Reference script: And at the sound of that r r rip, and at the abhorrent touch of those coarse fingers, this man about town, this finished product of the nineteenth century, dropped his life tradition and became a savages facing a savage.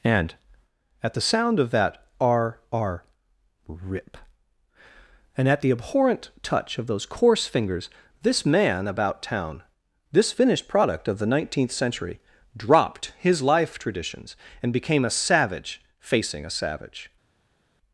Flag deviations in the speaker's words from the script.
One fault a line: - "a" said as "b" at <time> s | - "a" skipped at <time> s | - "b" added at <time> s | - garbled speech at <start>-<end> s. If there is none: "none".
- "tradition" said as "traditions" at 13.8 s
- "savages" said as "savage" at 15.1 s